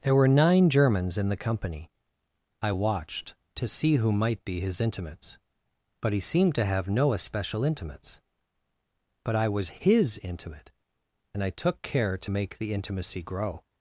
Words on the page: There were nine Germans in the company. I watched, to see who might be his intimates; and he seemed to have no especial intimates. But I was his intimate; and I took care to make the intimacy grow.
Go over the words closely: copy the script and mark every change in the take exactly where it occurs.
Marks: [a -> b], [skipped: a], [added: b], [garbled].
There were nine Germans in the company. I watched, to see who might be his intimates; [and -> but] he seemed to have no especial intimates. But I was his intimate; and I took care to make the intimacy grow.